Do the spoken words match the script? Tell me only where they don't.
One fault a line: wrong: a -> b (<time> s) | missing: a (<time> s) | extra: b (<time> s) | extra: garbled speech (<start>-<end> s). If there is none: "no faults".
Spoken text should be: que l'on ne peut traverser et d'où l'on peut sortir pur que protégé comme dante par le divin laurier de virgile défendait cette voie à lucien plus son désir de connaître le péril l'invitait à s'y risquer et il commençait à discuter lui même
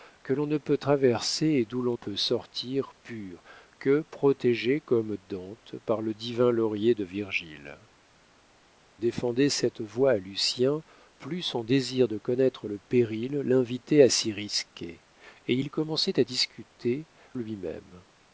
no faults